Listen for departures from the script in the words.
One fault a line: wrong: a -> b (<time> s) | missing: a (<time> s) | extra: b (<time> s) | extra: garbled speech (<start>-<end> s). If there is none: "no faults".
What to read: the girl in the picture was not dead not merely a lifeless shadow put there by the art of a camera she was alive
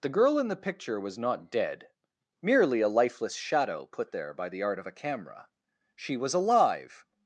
missing: not (1.9 s)